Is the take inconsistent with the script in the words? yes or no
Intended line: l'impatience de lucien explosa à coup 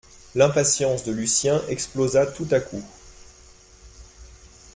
yes